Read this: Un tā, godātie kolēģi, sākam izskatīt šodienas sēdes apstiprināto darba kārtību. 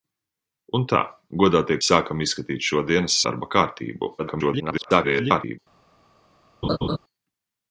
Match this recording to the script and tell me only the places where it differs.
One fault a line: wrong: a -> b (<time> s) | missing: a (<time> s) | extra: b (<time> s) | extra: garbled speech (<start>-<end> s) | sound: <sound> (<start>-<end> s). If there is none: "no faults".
missing: kolēģi (1.8 s)
missing: sēdes apstiprināto (3.2 s)
extra: garbled speech (4.2-5.6 s)
sound: laugh (6.6-7.0 s)